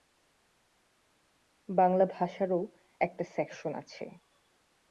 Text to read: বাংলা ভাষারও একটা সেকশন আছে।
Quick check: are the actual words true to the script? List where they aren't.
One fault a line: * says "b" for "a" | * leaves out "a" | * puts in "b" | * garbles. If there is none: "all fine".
all fine